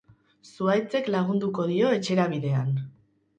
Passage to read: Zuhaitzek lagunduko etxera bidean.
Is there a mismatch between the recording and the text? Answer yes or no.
yes